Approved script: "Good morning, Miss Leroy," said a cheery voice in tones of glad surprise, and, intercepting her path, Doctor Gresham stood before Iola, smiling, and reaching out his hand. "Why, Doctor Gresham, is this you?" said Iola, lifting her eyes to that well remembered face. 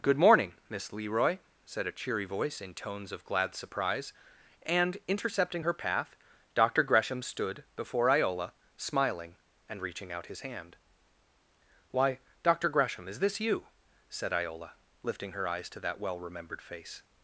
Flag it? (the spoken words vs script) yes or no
no